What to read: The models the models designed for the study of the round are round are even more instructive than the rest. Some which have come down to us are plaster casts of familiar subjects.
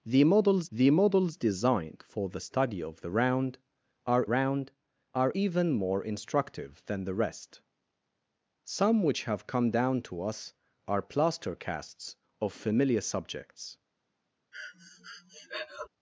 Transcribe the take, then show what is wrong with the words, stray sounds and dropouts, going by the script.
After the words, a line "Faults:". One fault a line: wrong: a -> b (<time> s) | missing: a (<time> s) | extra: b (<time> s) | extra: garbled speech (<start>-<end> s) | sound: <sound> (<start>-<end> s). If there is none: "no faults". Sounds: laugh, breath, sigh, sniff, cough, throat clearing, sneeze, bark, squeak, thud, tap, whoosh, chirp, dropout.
The models the models designed for the study of the round are round are even more instructive than the rest. Some which have come down to us are plaster casts of familiar subjects.
Faults:
sound: breath (14.5-15.9 s)